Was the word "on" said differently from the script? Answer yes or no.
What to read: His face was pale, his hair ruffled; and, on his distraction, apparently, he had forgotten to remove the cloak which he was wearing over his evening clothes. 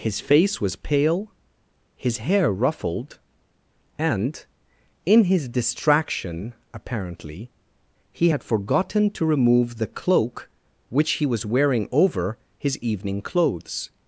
yes